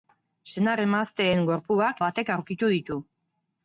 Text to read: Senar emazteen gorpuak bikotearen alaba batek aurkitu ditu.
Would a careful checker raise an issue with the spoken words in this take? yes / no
yes